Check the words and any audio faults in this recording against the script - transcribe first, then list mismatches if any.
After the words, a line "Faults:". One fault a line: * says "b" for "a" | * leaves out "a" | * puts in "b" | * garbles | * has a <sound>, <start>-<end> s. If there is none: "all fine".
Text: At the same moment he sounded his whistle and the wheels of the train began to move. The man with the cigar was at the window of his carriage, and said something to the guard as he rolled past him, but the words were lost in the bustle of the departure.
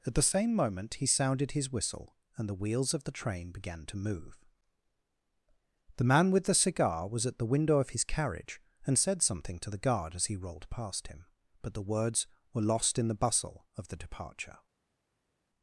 At the same moment he sounded his whistle and the wheels of the train began to move. The man with the cigar was at the window of his carriage, and said something to the guard as he rolled past him, but the words were lost in the bustle of the departure.
Faults:
all fine